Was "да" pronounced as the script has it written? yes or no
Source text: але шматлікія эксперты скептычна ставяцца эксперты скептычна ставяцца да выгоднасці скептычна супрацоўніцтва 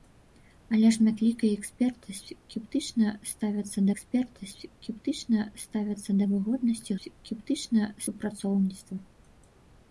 yes